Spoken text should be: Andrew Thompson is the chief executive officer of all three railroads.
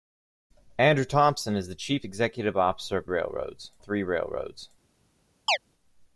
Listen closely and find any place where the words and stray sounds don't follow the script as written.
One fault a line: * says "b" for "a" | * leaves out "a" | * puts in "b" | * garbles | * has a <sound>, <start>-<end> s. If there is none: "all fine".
* says "railroads" for "all"
* has a chirp, 5.5-5.6 s